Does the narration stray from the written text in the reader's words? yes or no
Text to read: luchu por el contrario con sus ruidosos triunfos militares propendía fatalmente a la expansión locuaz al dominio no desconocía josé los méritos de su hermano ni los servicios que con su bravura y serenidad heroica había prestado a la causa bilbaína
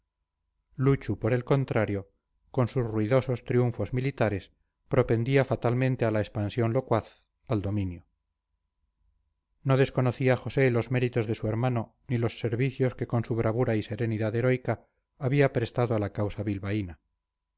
no